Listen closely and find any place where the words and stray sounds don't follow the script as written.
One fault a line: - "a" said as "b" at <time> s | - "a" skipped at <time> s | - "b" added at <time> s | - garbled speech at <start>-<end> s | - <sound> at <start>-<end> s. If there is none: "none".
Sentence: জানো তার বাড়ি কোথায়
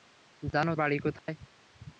- "তার" skipped at 0.7 s
- dropout at 1.2-1.3 s